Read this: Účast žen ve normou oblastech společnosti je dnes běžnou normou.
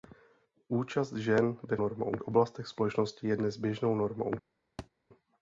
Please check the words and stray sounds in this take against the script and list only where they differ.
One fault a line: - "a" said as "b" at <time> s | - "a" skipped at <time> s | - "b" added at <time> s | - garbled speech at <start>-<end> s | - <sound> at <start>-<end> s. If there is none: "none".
- thud at 4.8-4.9 s